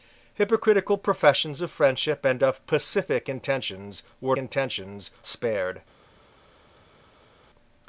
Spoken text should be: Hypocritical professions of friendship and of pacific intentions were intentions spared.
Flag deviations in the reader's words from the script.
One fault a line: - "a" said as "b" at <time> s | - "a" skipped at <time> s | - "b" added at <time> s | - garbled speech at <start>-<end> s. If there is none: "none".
none